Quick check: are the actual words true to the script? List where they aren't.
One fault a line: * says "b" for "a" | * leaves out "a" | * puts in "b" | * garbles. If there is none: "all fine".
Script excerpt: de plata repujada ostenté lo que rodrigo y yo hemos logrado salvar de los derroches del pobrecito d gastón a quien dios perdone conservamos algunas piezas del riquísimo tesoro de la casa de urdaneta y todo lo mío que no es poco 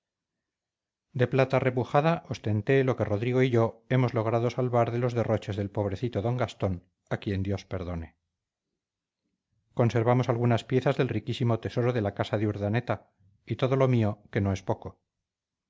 all fine